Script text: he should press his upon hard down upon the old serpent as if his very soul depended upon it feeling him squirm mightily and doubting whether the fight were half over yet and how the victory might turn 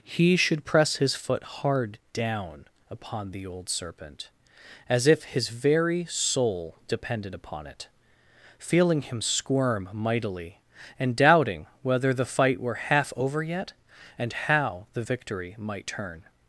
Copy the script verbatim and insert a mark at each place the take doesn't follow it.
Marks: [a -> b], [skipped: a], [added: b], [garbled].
he should press his [upon -> foot] hard down upon the old serpent as if his very soul depended upon it feeling him squirm mightily and doubting whether the fight were half over yet and how the victory might turn